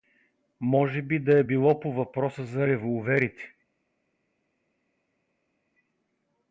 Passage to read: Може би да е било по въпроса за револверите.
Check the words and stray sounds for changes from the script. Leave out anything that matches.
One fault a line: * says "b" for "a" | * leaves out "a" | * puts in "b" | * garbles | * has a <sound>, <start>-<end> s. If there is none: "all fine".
all fine